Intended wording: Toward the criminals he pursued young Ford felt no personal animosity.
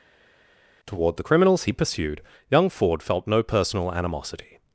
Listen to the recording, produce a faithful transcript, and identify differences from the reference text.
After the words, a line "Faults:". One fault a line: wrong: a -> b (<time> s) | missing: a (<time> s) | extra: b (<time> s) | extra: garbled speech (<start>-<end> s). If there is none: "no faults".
Toward the criminals he pursued young Ford felt no personal animosity.
Faults:
no faults